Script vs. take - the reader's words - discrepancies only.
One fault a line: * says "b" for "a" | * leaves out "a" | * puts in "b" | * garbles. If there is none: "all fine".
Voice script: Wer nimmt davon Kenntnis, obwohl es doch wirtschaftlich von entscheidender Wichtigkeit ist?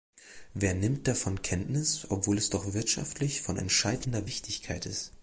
all fine